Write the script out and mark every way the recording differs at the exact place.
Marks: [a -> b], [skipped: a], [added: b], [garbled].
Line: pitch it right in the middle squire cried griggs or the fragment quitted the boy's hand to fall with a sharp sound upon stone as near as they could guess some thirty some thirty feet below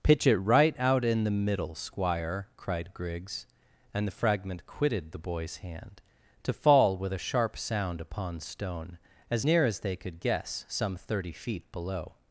pitch it right [added: out] in the middle squire cried griggs [or -> and] the fragment quitted the boy's hand to fall with a sharp sound upon stone as near as they could guess some thirty [skipped: some thirty] feet below